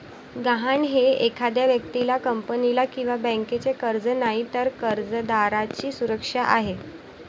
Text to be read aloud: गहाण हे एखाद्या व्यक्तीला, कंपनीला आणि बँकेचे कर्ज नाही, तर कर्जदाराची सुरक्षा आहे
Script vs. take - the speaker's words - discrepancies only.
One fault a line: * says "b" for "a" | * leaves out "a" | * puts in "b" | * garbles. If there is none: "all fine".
* says "किंवा" for "आणि"